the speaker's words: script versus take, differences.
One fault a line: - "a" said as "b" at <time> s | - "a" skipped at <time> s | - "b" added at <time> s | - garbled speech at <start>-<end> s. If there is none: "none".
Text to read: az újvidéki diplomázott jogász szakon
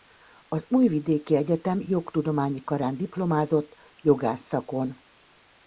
- "egyetem jogtudományi karán" added at 1.4 s